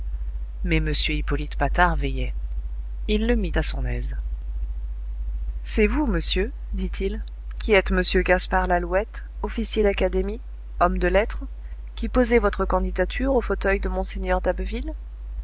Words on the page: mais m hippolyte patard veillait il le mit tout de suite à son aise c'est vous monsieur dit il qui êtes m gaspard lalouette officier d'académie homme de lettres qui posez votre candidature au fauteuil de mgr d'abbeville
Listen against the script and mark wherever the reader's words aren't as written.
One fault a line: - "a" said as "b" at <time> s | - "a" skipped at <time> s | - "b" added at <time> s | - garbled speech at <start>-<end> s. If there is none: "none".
- "tout de suite" skipped at 3.5 s